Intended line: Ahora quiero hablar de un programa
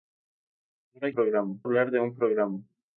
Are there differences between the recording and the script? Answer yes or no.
yes